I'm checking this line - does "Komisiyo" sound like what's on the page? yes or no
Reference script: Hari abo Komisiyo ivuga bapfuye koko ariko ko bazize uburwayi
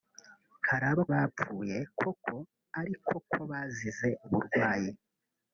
no